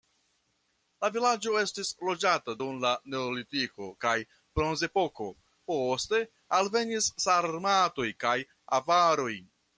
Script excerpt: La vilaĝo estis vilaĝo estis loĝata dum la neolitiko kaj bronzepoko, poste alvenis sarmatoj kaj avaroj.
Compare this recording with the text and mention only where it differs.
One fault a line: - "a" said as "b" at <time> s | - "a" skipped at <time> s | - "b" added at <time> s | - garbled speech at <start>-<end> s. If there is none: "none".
- "vilaĝo estis" skipped at 1.9 s